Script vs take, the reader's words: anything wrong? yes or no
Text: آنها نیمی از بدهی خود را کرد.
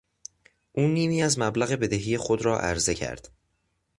yes